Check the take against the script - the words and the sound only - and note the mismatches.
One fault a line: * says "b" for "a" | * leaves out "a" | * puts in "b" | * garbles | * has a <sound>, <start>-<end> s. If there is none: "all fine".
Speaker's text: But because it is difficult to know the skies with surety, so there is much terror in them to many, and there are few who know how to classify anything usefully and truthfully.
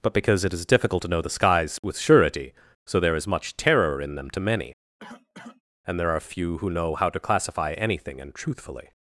* has a cough, 5.0-5.6 s
* leaves out "usefully"